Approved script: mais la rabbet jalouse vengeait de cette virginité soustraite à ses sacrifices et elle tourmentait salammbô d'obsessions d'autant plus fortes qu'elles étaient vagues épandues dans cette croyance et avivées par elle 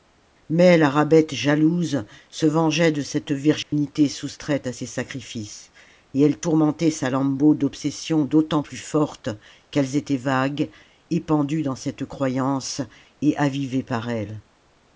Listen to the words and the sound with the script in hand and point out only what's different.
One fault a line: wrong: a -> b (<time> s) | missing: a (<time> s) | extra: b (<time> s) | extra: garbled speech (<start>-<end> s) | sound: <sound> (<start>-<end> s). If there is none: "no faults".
extra: se (2.3 s)
sound: dropout (3.6-3.7 s)